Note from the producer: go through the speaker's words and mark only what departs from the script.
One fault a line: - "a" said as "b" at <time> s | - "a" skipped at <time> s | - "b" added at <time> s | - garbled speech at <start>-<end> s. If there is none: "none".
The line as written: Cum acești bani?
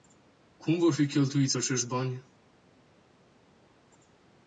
- "vor fi cheltuiți" added at 0.8 s